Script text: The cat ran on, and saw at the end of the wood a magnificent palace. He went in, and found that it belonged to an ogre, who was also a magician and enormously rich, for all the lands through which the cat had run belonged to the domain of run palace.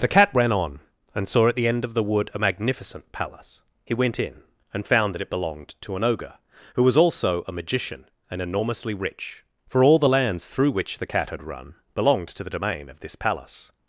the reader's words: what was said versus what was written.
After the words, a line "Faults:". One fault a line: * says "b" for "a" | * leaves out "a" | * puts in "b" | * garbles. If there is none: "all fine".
The cat ran on, and saw at the end of the wood a magnificent palace. He went in, and found that it belonged to an ogre, who was also a magician and enormously rich, for all the lands through which the cat had run belonged to the domain of this palace.
Faults:
* says "this" for "run"